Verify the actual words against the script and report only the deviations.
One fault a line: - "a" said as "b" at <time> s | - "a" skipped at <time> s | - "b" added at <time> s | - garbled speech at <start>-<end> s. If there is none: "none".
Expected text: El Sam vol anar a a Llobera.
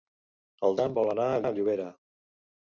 none